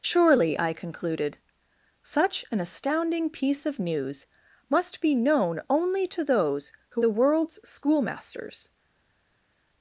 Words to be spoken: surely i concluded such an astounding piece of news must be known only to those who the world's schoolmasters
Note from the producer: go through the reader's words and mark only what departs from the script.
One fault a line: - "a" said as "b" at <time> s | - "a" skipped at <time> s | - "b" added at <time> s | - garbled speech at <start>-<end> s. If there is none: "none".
none